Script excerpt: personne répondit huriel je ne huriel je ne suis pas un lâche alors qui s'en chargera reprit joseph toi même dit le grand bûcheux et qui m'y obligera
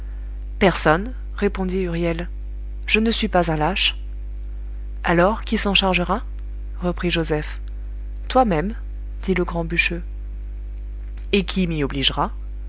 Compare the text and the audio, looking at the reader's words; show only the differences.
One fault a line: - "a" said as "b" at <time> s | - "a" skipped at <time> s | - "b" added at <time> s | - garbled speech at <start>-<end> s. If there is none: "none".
- "huriel je ne" skipped at 3.1 s